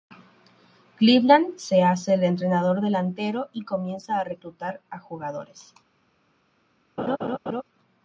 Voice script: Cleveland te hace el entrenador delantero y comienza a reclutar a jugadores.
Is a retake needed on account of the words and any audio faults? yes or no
yes